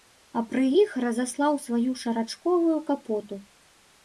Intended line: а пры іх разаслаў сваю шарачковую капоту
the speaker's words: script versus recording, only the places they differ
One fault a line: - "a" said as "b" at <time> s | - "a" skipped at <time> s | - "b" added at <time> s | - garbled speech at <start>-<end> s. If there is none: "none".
none